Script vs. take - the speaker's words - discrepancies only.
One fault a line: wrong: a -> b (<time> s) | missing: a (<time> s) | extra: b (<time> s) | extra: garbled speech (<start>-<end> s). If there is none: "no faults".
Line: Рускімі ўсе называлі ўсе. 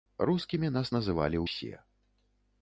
wrong: ўсе -> нас (0.8 s)